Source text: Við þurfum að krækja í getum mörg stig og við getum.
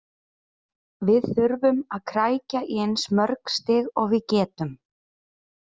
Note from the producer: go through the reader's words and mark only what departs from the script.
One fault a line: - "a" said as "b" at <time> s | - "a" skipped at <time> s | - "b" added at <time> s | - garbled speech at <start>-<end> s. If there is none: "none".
- "getum" said as "eins" at 2.9 s